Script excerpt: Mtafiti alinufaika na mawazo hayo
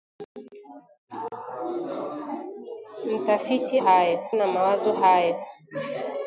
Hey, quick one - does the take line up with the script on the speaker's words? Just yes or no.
no